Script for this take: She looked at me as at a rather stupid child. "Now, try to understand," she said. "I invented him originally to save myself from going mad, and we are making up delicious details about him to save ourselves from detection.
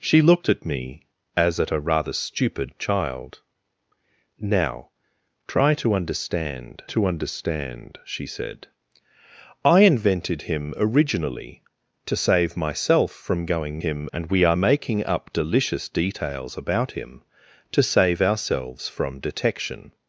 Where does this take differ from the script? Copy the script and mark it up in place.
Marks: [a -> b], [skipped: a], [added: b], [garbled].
She looked at me as at a rather stupid child. "Now, try to understand," [added: to understand] she said. "I invented him originally to save myself from going [mad, -> him] and we are making up delicious details about him to save ourselves from detection.